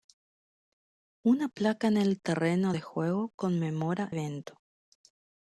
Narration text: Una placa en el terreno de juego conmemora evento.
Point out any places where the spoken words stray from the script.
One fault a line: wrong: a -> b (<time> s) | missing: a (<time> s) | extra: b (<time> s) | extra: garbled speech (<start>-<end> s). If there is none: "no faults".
no faults